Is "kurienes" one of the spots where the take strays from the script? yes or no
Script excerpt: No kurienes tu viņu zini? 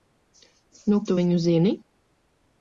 yes